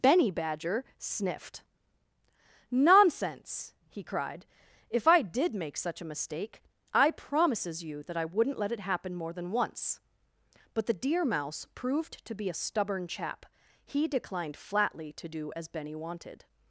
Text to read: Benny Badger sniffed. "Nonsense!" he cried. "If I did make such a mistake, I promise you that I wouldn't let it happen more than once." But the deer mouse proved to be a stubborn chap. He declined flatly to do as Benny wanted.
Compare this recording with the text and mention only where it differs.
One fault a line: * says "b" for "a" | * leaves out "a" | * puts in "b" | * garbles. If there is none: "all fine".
* says "promises" for "promise"